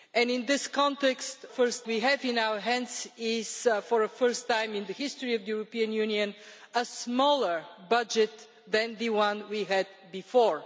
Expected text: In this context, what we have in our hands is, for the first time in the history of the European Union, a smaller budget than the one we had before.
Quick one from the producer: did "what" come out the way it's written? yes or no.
no